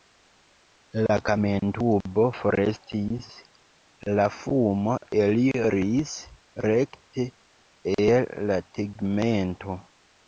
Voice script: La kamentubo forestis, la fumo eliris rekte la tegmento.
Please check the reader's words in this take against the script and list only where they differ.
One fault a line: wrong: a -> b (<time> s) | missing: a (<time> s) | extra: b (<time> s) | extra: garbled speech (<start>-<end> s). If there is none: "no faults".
extra: el (8.0 s)